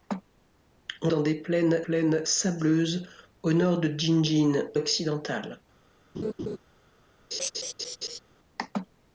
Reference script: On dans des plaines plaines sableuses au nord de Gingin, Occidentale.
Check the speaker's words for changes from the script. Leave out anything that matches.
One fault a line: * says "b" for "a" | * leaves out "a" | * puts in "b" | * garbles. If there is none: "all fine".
all fine